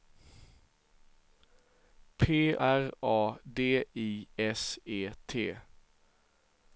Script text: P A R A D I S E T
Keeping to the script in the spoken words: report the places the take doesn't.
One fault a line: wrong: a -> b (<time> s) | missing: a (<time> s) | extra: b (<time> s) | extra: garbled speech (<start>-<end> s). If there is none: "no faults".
missing: A (2.5 s)